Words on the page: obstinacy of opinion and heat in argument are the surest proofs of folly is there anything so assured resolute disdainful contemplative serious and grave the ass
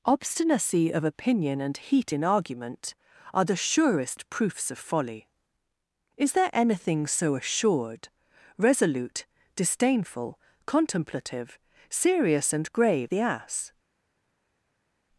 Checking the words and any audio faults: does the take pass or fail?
pass